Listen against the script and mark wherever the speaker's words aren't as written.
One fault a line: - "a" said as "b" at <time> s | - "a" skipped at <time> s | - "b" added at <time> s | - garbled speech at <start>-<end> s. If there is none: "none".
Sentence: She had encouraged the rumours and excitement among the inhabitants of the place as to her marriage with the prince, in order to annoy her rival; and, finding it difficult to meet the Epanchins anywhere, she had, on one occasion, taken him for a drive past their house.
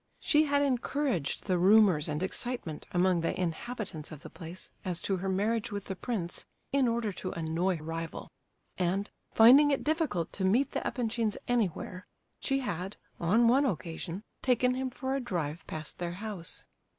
- "her" skipped at 7.8 s